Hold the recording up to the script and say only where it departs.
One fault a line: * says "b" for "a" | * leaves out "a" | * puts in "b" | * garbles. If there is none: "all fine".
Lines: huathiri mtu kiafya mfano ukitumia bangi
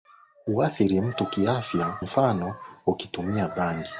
all fine